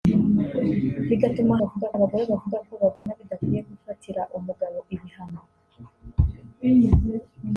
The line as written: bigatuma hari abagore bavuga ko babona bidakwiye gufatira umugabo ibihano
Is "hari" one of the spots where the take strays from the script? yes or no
yes